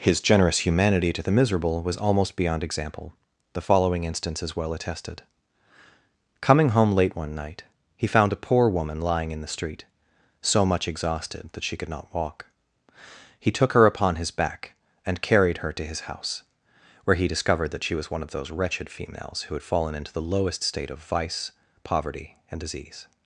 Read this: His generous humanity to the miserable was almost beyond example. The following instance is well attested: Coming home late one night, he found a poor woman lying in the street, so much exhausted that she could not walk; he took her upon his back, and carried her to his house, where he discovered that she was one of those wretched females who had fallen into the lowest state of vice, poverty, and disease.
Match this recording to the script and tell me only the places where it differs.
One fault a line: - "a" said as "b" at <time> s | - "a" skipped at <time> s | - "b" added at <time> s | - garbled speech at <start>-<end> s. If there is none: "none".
none